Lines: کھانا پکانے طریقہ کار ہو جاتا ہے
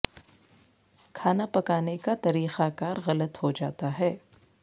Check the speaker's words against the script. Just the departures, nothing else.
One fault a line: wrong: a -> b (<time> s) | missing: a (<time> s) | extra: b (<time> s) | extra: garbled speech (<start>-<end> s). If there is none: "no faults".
extra: کا (2.0 s)
extra: غلط (3.1 s)